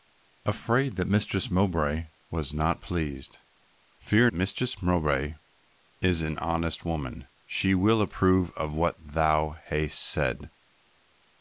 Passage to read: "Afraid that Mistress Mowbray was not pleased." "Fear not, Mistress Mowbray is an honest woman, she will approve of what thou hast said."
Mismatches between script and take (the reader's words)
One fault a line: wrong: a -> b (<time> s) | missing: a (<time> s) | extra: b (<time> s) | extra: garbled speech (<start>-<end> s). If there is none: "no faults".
missing: not (4.3 s)